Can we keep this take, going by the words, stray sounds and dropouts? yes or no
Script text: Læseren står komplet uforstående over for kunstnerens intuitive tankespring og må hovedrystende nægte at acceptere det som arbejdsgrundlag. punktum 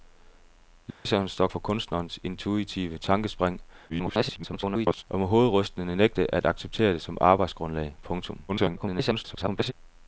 no